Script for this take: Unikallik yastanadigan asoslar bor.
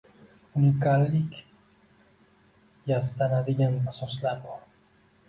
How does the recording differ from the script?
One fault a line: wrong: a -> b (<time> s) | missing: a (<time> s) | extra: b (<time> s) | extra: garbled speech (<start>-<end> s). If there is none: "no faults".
no faults